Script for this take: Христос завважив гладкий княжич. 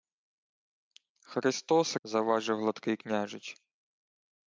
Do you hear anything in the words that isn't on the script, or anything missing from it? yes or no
no